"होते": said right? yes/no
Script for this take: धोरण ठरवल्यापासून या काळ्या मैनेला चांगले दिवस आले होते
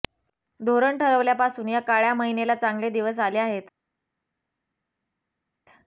no